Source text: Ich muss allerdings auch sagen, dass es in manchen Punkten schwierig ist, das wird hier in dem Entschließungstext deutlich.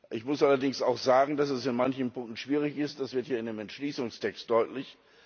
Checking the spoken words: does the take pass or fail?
pass